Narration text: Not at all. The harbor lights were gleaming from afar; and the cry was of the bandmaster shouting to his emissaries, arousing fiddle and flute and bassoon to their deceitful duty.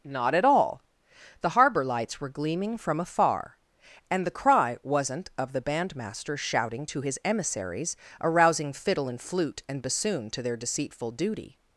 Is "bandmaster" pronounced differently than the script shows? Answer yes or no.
no